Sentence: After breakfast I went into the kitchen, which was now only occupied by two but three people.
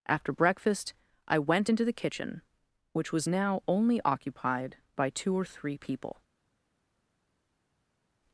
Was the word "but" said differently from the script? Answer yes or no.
yes